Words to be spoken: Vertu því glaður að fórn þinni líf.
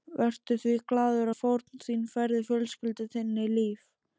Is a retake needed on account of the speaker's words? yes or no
yes